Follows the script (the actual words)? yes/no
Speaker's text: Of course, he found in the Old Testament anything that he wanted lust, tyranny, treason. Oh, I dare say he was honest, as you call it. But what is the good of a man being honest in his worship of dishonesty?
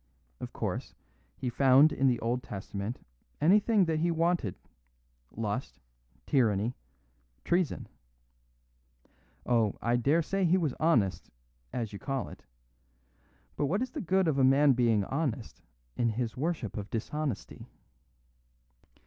yes